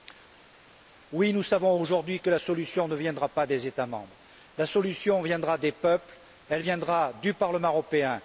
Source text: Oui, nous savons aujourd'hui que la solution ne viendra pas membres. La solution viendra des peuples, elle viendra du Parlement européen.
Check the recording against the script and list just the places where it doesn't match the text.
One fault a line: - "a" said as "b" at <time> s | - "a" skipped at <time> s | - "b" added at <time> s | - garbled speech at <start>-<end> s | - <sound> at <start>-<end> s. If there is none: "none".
- "des États" added at 3.5 s